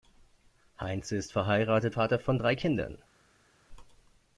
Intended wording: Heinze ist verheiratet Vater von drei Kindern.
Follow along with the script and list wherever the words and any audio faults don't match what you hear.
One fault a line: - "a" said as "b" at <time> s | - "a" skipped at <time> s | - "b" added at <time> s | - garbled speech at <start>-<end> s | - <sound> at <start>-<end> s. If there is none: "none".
none